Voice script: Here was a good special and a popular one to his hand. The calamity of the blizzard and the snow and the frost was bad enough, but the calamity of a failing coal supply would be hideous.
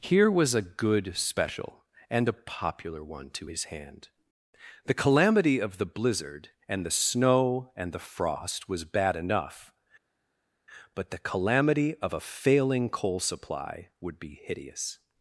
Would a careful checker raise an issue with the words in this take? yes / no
no